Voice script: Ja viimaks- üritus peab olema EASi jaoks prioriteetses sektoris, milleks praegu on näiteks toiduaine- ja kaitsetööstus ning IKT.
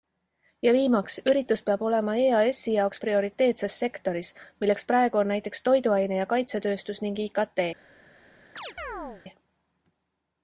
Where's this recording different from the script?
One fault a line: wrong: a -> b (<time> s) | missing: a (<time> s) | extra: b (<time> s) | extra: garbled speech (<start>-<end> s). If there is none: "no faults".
no faults